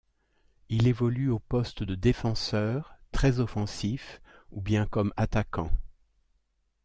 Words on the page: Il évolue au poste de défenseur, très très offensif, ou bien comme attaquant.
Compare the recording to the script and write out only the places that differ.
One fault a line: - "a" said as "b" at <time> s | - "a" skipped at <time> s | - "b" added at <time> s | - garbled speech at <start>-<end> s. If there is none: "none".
- "très" skipped at 3.4 s